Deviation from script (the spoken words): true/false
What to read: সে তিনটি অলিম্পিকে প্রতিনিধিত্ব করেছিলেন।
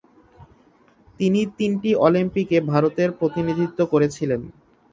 true